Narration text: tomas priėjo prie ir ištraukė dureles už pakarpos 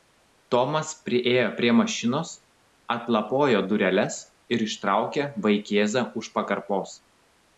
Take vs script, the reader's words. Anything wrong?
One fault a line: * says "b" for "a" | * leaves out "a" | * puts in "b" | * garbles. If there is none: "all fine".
* puts in "mašinos atlapojo dureles"
* says "vaikėzą" for "dureles"